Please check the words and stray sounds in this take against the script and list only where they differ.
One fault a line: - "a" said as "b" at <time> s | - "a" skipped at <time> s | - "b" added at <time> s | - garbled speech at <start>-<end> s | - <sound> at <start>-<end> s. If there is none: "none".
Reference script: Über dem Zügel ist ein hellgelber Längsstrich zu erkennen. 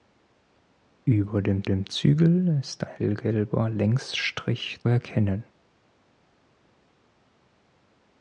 - "dem" added at 1.6 s
- "ein" skipped at 2.8 s
- "zu" skipped at 4.8 s